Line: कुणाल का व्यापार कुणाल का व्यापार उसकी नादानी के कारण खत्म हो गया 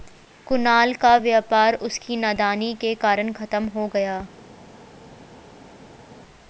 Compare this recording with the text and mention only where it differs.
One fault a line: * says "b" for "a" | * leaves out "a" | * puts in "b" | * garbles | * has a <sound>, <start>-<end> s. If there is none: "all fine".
* leaves out "कुणाल का व्यापार"